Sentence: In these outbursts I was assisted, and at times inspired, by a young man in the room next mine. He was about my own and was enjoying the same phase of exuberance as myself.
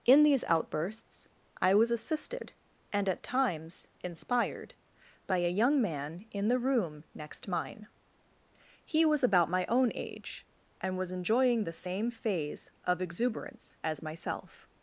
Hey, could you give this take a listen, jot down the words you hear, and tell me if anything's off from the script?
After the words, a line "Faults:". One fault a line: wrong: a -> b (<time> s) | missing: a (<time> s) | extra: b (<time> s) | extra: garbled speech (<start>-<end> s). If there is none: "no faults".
In these outbursts I was assisted, and at times inspired, by a young man in the room next mine. He was about my own age and was enjoying the same phase of exuberance as myself.
Faults:
extra: age (9.9 s)